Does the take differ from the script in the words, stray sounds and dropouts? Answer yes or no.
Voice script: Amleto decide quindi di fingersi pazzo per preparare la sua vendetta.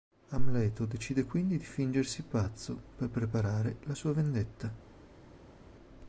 no